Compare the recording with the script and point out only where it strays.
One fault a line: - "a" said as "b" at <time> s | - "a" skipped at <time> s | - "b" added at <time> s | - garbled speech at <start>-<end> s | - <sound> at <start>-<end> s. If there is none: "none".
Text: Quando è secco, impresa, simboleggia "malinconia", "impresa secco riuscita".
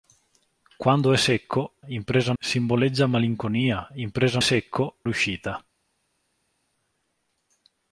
none